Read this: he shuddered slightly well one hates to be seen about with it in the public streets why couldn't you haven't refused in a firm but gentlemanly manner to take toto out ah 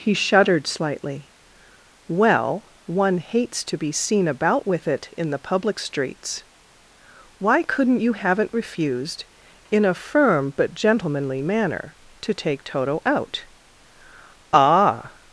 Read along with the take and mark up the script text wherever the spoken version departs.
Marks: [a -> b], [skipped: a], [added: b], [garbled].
he shuddered slightly well one hates to be seen about with it in the public streets why couldn't you haven't refused in a firm but gentlemanly manner to take toto out ah